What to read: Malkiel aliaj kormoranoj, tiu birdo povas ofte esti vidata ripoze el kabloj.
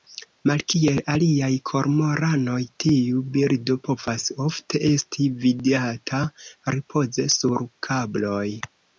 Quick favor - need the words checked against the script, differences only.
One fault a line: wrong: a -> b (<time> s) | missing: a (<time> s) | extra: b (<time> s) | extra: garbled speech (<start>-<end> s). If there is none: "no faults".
wrong: el -> sur (7.4 s)